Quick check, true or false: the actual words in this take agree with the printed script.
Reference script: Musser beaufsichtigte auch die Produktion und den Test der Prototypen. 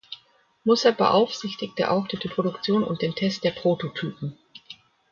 false